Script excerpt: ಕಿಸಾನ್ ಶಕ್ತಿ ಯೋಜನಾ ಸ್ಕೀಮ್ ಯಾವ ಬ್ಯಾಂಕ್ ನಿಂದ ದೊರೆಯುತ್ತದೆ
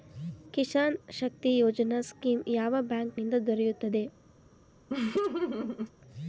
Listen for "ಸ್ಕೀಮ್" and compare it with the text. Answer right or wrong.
right